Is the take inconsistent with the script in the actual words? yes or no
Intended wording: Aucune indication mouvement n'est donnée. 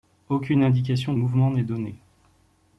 no